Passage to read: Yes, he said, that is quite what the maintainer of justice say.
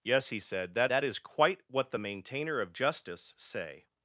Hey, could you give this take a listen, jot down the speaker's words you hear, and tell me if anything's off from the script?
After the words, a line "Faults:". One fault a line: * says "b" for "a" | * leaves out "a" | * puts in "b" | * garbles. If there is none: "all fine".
Yes, he said, that that is quite what the maintainer of justice say.
Faults:
* puts in "that"